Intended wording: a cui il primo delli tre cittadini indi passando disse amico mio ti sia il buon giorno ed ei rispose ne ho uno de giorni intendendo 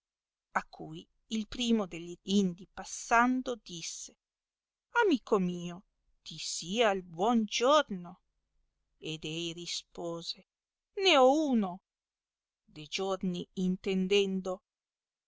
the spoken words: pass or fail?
fail